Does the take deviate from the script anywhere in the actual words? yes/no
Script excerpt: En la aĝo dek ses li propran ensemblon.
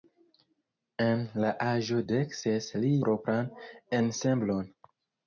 no